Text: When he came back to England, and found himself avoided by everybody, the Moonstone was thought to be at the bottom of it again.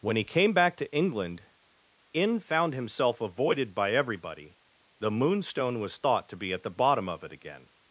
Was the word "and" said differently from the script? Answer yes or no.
yes